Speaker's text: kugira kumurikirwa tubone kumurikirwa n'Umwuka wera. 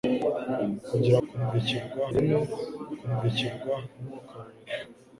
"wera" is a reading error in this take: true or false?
false